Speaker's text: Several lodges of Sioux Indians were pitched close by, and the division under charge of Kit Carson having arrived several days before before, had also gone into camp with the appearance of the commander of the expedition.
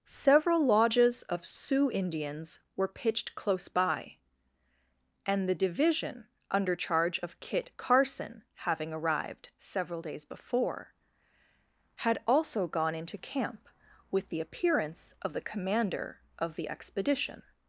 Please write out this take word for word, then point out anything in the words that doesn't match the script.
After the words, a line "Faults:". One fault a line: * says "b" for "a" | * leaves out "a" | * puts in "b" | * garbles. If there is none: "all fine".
Several lodges of Sioux Indians were pitched close by, and the division under charge of Kit Carson having arrived several days before, had also gone into camp with the appearance of the commander of the expedition.
Faults:
* leaves out "before"